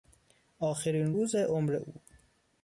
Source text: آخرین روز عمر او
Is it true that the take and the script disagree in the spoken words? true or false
false